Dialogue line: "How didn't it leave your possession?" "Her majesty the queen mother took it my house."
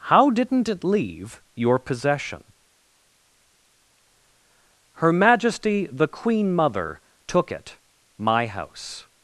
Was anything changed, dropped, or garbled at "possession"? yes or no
no